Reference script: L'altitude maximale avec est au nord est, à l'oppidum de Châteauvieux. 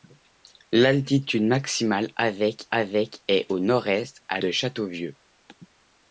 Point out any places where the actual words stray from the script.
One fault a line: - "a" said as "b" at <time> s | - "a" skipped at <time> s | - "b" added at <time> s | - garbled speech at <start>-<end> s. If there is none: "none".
- "avec" added at 2.7 s
- "l'oppidum" skipped at 4.4 s